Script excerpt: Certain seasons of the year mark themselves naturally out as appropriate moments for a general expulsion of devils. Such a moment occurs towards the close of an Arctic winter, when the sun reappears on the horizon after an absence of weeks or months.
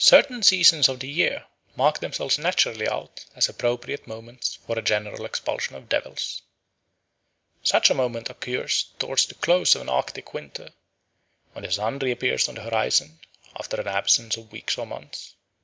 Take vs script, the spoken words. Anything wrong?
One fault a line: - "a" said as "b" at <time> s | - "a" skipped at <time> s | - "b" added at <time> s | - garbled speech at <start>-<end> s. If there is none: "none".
none